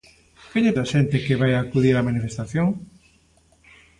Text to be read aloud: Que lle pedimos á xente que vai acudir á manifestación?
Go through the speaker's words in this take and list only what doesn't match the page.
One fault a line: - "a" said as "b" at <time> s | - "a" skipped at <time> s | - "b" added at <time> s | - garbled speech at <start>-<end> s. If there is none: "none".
- "pedimos" skipped at 0.8 s